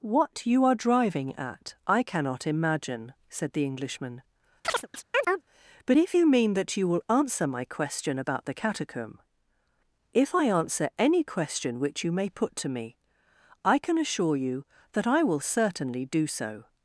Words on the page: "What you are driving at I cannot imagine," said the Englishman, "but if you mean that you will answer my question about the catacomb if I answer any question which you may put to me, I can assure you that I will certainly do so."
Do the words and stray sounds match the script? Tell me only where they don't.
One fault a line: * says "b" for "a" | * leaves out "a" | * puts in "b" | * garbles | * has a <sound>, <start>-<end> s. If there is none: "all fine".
* has a chirp, 4.6-5.4 s